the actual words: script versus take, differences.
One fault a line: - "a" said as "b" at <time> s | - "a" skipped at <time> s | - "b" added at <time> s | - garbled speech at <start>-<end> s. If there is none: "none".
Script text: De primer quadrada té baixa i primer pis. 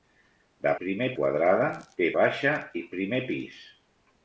none